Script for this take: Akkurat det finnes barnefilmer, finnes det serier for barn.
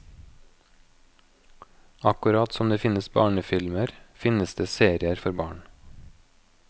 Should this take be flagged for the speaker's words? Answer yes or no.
yes